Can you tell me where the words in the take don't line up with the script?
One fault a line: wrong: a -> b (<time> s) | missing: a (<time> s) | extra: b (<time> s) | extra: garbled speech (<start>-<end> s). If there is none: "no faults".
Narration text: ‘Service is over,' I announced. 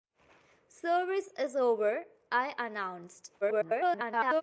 extra: garbled speech (3.4-4.4 s)